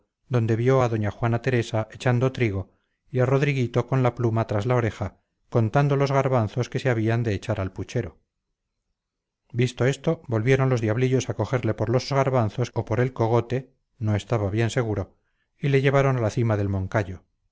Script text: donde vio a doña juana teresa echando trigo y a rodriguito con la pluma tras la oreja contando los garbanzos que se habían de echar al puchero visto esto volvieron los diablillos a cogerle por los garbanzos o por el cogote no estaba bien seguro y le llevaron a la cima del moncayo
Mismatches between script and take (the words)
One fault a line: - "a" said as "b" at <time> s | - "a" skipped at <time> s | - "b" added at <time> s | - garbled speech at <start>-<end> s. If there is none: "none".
none